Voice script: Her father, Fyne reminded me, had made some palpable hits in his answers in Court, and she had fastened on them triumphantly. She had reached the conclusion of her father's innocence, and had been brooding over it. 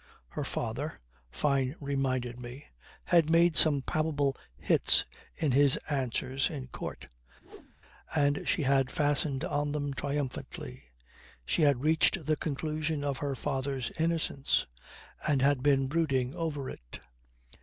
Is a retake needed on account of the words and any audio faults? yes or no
yes